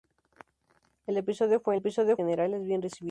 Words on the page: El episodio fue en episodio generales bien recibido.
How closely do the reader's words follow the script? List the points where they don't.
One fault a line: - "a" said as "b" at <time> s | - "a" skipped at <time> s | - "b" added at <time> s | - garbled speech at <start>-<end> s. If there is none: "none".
none